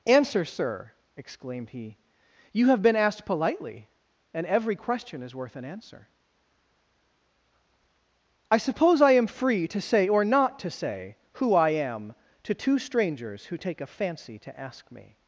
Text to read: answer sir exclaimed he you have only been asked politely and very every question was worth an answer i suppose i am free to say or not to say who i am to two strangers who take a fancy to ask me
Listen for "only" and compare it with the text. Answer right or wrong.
wrong